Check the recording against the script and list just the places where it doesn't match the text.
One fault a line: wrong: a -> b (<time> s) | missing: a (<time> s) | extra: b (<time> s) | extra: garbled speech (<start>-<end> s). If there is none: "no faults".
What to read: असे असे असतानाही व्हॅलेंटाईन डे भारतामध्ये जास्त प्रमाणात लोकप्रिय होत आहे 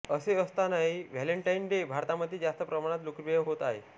missing: असे (0.3 s)